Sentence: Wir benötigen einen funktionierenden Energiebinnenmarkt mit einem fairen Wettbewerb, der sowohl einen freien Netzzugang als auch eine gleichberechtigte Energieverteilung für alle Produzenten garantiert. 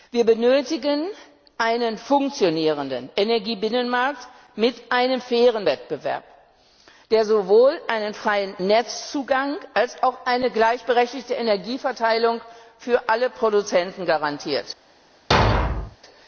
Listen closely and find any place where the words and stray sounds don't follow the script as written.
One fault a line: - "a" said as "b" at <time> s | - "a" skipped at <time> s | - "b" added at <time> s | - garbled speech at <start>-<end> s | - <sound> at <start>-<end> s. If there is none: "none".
- thud at 15.3-16.0 s